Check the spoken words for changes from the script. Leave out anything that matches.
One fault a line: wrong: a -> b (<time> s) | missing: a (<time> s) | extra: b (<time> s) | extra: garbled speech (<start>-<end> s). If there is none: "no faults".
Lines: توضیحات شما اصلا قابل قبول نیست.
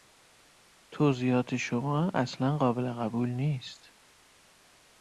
no faults